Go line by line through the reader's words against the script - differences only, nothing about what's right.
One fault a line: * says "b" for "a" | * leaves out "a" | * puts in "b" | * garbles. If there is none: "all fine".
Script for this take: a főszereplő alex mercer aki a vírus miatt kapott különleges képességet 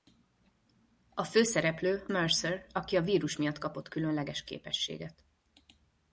* leaves out "alex"